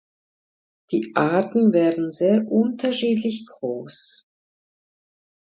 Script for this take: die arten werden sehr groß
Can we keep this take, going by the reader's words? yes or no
no